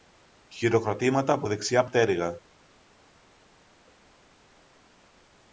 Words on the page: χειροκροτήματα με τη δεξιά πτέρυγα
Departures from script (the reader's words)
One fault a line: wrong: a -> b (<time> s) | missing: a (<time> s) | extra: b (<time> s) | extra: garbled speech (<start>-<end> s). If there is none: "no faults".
wrong: με -> από (1.3 s)